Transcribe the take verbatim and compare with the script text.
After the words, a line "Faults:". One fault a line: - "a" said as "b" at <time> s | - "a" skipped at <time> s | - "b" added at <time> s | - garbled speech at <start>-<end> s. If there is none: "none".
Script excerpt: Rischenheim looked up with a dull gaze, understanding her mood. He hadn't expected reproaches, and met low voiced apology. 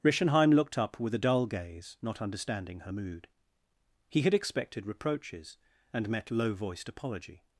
Rischenheim looked up with a dull gaze, not understanding her mood. He had expected reproaches, and met low voiced apology.
Faults:
- "not" added at 2.0 s
- "hadn't" said as "had" at 4.2 s